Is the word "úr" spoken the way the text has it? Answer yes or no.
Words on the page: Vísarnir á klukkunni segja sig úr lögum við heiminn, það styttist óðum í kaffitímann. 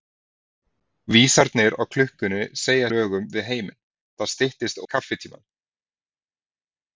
no